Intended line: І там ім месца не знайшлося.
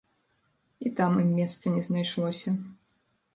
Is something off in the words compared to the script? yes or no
no